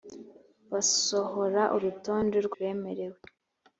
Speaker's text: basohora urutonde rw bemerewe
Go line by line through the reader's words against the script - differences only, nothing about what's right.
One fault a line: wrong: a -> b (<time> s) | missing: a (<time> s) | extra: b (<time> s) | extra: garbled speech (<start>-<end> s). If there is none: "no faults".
no faults